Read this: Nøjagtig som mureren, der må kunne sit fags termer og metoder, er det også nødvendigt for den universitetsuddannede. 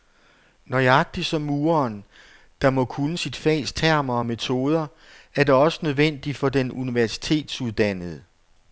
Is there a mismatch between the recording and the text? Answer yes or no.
no